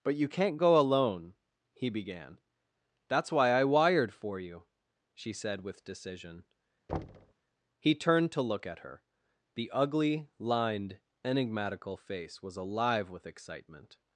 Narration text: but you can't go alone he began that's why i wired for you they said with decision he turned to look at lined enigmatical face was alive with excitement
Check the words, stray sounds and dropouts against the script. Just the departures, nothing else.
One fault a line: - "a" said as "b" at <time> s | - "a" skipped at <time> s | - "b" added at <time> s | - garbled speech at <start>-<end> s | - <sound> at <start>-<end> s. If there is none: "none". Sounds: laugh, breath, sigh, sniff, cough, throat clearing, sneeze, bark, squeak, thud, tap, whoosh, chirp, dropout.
- "they" said as "she" at 5.1 s
- thud at 6.9-7.3 s
- "her the ugly" added at 8.8 s